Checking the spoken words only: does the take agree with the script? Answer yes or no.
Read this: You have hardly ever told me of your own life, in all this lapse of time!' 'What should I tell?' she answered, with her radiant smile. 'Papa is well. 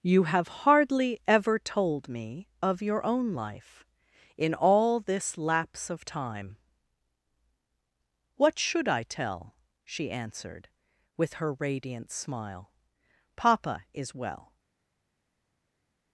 yes